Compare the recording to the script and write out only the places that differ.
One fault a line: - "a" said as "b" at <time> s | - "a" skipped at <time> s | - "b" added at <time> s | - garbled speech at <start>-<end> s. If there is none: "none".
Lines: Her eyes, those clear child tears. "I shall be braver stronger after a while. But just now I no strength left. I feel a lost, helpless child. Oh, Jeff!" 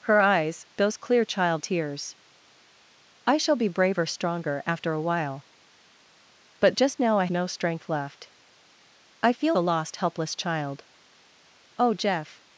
none